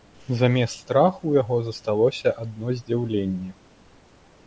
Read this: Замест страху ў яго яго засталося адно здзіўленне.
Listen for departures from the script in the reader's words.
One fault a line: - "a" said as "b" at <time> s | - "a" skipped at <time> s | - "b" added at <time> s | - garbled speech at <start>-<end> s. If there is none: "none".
- "яго" skipped at 1.6 s